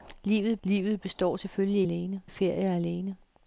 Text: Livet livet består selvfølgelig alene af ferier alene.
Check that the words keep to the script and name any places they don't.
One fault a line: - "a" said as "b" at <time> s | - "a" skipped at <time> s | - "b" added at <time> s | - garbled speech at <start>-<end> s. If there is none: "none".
none